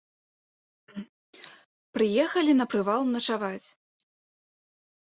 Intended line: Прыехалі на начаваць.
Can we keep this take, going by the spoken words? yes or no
no